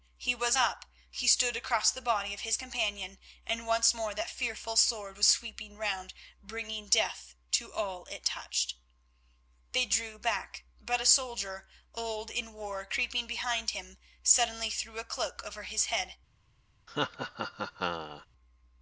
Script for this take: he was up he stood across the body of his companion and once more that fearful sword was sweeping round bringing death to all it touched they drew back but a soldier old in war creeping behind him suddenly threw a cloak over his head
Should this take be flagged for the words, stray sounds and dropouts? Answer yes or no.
yes